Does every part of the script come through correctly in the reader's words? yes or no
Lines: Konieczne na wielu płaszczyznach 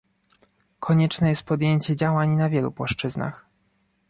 no